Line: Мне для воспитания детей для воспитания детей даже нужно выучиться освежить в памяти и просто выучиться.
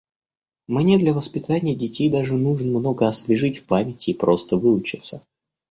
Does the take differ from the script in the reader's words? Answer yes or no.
yes